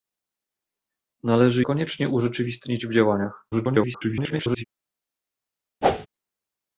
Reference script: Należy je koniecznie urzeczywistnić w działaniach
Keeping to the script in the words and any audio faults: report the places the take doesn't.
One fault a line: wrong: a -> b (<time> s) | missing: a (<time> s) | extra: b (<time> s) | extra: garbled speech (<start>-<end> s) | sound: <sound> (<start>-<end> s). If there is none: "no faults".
missing: je (1.6 s)
extra: garbled speech (3.5-4.6 s)
sound: whoosh (5.8-6.1 s)